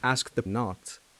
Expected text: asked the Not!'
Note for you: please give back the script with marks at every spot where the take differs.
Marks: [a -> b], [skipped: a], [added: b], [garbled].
asked the Not!'